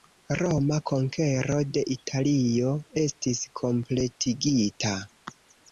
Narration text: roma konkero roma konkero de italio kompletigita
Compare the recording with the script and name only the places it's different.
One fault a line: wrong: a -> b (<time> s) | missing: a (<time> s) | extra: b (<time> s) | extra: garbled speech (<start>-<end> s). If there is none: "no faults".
missing: roma konkero (1.6 s)
extra: estis (3.0 s)